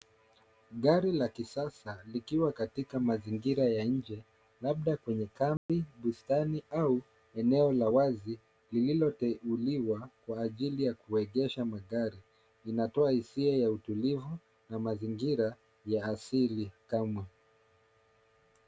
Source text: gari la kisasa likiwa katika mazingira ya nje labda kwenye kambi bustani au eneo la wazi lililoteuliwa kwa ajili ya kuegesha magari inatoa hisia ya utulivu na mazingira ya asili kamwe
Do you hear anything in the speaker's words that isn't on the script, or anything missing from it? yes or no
no